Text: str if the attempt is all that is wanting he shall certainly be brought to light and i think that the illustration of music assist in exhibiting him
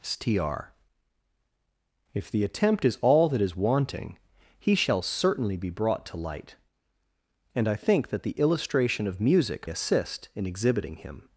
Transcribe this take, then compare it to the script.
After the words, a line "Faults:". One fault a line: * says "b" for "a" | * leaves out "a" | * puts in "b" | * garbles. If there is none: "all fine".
str if the attempt is all that is wanting he shall certainly be brought to light and i think that the illustration of music assist in exhibiting him
Faults:
all fine